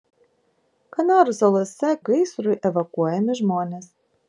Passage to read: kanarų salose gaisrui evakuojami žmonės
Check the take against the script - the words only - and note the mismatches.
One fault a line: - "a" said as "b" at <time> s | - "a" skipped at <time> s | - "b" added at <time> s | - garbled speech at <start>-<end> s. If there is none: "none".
none